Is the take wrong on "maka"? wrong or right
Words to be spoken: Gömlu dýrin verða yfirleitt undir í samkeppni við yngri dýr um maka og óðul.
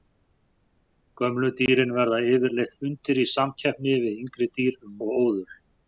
wrong